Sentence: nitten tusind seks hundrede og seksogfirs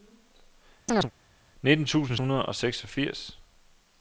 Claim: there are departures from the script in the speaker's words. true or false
true